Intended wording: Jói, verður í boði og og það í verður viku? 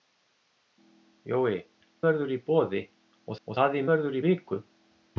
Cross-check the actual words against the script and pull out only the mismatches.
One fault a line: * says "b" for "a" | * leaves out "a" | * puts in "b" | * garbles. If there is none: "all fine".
all fine